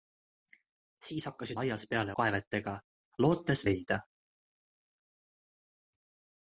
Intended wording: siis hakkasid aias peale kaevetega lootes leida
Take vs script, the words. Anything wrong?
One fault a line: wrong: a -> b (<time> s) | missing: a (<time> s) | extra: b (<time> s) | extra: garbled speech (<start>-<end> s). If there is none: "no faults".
no faults